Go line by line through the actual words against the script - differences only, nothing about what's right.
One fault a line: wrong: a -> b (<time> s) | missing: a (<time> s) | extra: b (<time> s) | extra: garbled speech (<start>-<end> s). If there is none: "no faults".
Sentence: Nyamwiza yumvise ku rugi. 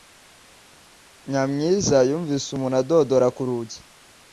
extra: umuntu adodora (2.5 s)